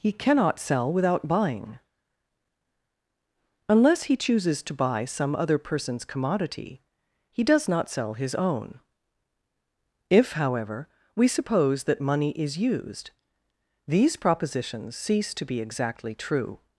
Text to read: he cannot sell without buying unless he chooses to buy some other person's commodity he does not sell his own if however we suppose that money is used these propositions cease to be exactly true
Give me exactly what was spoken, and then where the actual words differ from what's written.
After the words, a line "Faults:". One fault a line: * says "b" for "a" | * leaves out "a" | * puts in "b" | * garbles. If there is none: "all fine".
he cannot sell without buying unless he chooses to buy some other person's commodity he does not sell his own if however we suppose that money is used these propositions cease to be exactly true
Faults:
all fine